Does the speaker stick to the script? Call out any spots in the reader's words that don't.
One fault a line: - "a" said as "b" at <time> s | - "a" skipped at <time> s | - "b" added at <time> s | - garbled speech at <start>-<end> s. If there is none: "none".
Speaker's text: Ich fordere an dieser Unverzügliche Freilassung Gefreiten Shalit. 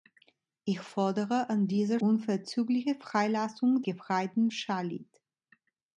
none